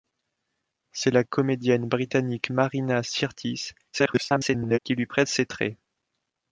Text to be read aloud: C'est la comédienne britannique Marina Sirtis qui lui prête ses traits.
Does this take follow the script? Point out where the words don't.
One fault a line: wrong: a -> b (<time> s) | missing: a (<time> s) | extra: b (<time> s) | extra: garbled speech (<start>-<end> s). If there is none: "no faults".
extra: garbled speech (3.9-4.8 s)